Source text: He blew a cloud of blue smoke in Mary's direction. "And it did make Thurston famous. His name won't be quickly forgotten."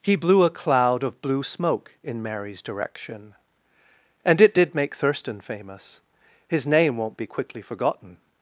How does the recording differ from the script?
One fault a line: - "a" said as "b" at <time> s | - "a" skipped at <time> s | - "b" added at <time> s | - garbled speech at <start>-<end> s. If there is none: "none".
none